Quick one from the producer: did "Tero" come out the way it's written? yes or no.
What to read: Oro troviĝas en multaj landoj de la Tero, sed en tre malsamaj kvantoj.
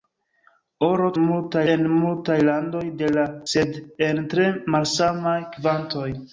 no